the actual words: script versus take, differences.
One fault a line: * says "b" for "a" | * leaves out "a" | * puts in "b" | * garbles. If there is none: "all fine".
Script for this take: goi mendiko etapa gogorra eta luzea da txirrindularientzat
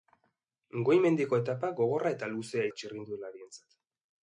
all fine